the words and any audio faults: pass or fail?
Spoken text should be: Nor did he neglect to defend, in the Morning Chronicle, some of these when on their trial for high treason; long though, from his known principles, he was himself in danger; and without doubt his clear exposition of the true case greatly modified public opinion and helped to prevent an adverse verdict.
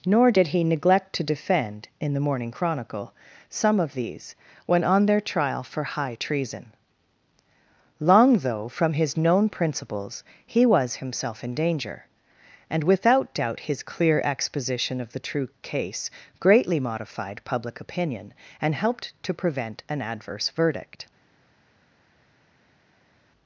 pass